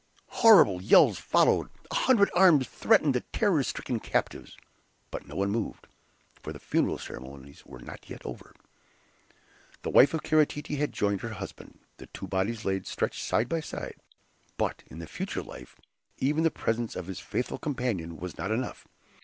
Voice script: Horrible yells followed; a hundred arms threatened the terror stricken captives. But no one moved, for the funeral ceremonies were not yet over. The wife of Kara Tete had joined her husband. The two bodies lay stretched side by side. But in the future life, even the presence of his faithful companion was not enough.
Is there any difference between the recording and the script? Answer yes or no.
no